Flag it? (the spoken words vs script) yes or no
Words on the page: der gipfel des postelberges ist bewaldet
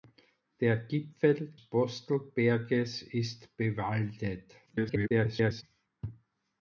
yes